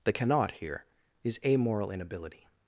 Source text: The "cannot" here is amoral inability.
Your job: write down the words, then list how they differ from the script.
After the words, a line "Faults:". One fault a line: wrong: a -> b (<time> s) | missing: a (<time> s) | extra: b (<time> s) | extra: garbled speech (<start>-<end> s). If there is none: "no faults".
The "cannot" here is amoral inability.
Faults:
no faults